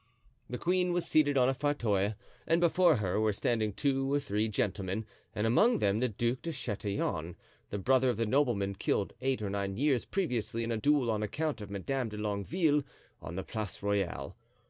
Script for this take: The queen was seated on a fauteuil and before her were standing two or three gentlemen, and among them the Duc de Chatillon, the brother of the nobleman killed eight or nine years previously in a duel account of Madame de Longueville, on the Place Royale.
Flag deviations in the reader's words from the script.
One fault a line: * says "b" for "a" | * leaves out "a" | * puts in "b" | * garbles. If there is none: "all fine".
* puts in "on"